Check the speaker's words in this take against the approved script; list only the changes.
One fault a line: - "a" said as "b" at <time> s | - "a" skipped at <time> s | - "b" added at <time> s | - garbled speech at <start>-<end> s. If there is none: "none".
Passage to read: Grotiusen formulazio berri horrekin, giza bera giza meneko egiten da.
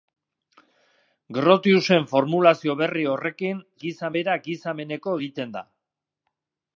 none